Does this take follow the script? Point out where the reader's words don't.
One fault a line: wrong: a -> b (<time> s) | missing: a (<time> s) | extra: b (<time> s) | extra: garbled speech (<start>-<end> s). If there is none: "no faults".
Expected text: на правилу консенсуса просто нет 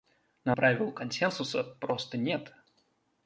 no faults